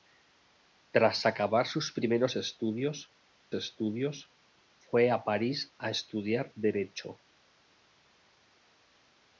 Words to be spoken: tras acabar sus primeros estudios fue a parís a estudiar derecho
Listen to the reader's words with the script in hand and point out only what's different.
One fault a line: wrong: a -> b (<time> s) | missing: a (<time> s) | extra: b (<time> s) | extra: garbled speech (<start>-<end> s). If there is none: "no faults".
extra: estudios (3.5 s)